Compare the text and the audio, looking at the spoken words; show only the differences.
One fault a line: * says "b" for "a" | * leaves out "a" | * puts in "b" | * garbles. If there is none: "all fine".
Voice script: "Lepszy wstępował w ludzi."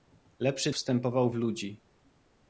all fine